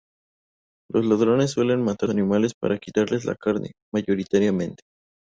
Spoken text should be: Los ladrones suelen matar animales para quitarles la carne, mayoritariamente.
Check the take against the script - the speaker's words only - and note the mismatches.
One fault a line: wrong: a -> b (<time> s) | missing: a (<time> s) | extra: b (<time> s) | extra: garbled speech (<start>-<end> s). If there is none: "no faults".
no faults